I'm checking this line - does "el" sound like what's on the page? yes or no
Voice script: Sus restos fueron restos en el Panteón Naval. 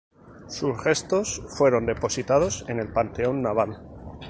yes